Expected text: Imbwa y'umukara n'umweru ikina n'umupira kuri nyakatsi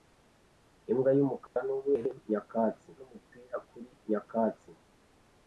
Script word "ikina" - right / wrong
wrong